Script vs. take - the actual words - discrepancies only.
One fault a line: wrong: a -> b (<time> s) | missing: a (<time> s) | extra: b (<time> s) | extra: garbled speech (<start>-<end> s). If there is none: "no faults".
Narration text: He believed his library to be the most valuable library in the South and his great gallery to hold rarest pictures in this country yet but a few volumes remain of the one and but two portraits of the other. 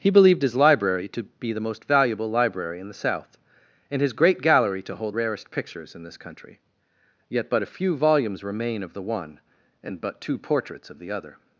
no faults